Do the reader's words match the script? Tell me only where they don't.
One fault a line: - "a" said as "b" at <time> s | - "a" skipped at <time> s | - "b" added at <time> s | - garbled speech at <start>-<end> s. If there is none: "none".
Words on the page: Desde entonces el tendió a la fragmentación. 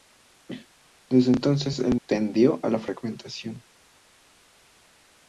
none